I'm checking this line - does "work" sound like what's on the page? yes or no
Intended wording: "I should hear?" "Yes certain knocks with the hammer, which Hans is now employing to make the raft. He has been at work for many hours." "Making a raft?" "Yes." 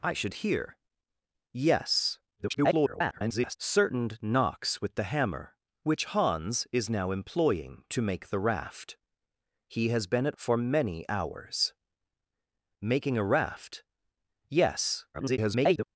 no